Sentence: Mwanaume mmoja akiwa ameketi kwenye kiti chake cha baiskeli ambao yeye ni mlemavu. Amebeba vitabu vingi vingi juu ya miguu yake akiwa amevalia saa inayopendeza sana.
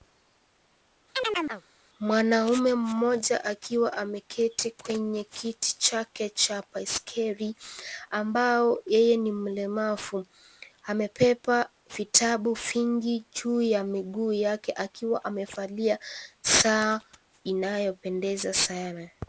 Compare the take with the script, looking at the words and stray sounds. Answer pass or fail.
fail